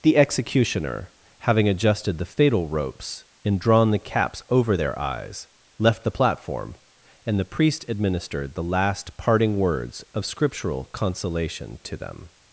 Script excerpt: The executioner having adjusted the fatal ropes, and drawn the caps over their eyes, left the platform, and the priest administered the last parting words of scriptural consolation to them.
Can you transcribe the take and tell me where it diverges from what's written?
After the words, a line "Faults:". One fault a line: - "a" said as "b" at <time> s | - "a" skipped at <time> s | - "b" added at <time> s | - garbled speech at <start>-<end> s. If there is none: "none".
The executioner having adjusted the fatal ropes, and drawn the caps over their eyes, left the platform, and the priest administered the last parting words of scriptural consolation to them.
Faults:
none